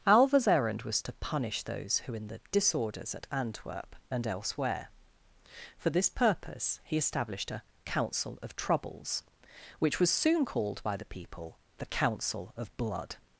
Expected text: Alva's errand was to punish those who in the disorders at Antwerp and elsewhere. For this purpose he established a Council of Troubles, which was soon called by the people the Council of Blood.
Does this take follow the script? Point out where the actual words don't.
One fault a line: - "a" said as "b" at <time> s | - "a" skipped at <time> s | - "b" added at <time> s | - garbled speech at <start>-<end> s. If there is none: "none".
none